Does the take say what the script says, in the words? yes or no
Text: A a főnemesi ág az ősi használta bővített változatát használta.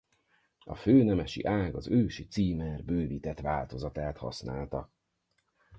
no